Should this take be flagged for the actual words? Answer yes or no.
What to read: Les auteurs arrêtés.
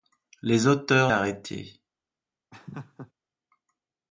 no